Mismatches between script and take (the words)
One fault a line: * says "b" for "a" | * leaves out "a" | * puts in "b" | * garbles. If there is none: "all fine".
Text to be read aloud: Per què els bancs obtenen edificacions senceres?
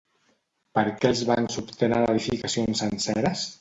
all fine